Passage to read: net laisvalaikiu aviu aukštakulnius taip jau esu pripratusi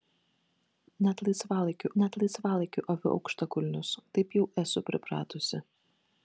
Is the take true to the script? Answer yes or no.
no